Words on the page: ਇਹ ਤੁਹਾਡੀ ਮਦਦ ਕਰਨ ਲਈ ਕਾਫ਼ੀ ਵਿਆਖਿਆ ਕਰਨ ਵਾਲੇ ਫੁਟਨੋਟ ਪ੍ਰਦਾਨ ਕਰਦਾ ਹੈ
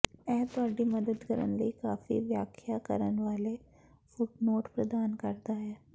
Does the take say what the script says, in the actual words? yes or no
yes